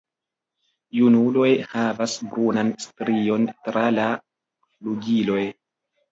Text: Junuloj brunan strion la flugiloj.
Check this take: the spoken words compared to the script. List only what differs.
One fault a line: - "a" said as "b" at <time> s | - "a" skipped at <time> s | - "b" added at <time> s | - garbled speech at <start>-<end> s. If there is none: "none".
- "havas" added at 1.7 s
- "tra" added at 3.7 s